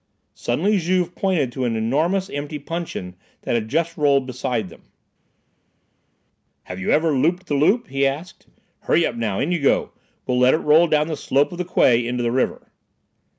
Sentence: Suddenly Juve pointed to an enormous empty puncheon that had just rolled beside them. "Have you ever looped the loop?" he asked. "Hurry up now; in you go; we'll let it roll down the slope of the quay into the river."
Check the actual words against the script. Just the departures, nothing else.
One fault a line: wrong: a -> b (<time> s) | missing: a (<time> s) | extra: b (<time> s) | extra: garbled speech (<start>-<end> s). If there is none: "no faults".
no faults